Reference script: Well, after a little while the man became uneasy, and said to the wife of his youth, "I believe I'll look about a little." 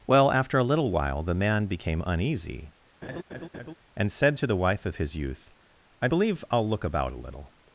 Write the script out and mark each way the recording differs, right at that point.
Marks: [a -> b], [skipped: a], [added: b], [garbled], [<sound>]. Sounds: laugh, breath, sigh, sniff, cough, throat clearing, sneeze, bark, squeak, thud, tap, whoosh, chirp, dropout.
Well, after a little while the man became uneasy, [laugh] and said to the wife of his youth, "I believe I'll look about a little."